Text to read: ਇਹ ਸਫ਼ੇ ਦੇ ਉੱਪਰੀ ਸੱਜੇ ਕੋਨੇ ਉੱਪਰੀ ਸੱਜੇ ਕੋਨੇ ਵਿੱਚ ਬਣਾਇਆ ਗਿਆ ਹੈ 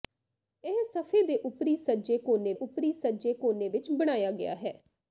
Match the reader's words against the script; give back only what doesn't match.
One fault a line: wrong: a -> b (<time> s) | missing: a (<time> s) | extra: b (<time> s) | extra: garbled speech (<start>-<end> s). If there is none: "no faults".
no faults